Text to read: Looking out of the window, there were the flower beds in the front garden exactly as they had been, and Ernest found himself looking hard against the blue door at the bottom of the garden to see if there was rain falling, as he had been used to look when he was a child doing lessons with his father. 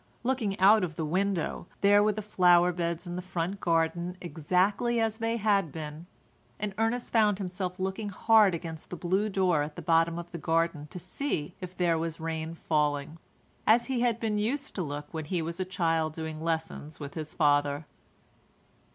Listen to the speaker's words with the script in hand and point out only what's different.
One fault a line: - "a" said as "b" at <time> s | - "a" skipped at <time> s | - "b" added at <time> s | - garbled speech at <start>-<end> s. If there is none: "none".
none